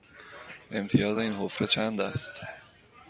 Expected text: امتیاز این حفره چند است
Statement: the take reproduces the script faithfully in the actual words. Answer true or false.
true